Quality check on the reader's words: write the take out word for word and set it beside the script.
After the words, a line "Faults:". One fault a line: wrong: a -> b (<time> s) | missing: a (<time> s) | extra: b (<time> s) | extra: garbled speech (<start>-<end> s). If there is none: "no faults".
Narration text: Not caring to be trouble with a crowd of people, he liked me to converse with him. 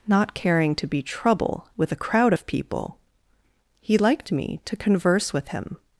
Not caring to be trouble with a crowd of people, he liked me to converse with him.
Faults:
no faults